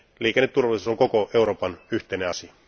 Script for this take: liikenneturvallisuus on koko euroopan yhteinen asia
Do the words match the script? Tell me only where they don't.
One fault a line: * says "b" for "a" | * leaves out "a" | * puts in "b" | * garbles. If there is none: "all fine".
all fine